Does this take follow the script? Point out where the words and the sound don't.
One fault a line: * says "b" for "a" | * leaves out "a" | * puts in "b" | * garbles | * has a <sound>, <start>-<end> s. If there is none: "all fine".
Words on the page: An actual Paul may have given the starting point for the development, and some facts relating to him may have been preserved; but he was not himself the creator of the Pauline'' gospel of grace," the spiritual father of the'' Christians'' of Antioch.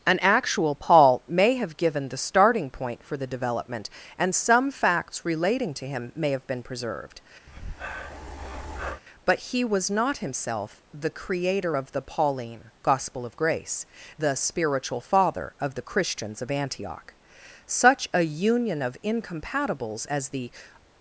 * has a breath, 7.5-9.0 s
* puts in "Such a union of incompatibles as the"